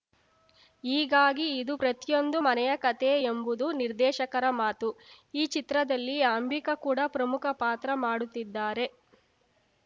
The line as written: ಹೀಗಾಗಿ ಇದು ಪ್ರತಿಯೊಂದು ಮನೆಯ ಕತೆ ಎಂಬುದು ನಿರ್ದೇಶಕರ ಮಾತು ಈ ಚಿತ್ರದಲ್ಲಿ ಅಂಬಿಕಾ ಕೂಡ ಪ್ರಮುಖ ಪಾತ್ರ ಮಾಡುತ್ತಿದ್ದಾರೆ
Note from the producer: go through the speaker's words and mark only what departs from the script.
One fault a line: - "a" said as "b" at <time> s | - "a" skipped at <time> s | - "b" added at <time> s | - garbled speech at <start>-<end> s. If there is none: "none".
none